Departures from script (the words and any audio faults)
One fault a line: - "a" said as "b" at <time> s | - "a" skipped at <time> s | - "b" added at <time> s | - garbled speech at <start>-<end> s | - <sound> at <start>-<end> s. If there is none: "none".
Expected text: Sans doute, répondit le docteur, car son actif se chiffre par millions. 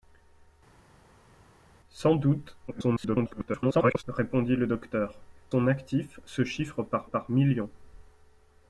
- garbled speech at 2.7-4.0 s
- "car" skipped at 5.2 s
- "par" added at 7.0 s